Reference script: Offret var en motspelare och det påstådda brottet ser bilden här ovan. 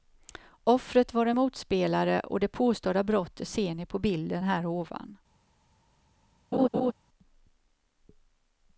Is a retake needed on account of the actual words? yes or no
yes